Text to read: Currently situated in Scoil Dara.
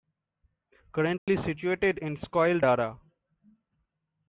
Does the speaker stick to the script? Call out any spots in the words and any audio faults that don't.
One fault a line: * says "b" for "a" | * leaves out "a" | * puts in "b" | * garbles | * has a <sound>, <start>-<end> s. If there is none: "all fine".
* has a dropout, 1.2-1.3 s